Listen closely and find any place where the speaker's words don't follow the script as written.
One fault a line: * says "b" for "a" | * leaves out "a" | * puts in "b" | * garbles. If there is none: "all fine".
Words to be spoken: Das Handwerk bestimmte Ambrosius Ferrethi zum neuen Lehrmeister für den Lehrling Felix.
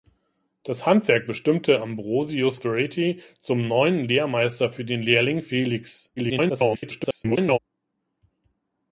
* garbles